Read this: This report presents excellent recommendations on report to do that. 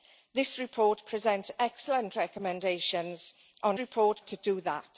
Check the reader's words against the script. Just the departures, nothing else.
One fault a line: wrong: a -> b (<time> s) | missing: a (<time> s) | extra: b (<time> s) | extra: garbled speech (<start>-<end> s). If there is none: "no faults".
no faults